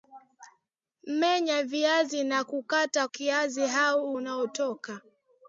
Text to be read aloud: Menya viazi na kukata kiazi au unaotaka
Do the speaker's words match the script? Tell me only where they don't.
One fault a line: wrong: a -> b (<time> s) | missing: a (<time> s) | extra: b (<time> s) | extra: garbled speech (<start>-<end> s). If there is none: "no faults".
no faults